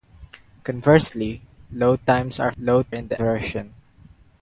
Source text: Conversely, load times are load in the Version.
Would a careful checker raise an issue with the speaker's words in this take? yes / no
no